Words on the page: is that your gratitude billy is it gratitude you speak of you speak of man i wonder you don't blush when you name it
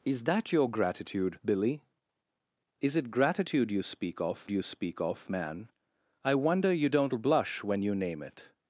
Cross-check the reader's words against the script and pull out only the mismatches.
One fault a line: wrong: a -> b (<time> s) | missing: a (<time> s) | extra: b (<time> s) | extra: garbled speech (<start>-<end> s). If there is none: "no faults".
no faults